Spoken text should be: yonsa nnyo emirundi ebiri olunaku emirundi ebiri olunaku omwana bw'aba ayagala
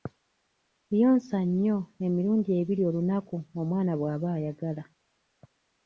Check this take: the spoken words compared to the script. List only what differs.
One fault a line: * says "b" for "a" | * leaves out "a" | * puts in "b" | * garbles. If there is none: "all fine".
* leaves out "emirundi ebiri olunaku"